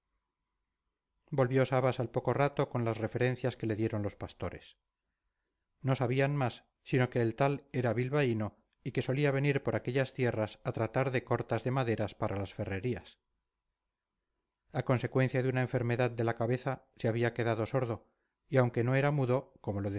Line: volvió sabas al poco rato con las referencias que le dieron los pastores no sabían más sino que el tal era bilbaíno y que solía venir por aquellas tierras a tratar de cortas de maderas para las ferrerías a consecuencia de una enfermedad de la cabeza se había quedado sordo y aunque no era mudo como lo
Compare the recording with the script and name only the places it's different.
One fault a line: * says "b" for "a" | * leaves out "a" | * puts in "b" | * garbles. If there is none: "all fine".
all fine